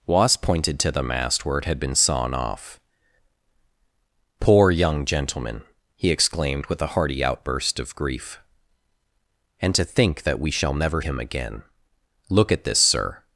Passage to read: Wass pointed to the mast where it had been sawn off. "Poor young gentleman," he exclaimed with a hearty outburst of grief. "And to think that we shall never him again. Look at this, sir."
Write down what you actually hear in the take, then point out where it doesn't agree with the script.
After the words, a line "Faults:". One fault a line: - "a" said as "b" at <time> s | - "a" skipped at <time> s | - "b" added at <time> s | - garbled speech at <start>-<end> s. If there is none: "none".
Wass pointed to the mast where it had been sawn off. "Poor young gentleman," he exclaimed with a hearty outburst of grief. "And to think that we shall never him again. Look at this, sir."
Faults:
none